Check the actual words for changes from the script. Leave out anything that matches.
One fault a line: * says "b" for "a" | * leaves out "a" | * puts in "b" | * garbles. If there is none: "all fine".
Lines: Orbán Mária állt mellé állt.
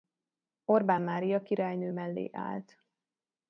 * says "királynő" for "állt"